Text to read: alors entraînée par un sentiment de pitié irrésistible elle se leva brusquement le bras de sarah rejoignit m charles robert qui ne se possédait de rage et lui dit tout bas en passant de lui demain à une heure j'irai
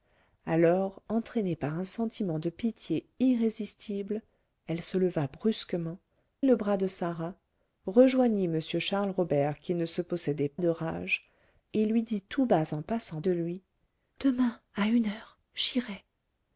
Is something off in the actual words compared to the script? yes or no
no